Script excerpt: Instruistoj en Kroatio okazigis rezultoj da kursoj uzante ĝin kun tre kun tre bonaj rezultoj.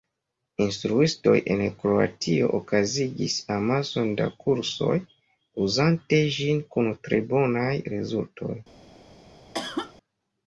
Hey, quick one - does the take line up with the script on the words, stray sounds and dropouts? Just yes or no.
no